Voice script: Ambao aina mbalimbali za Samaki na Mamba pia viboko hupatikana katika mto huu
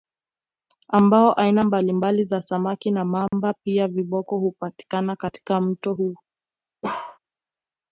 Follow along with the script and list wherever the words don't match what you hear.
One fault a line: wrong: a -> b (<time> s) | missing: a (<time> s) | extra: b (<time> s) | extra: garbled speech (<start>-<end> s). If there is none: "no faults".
no faults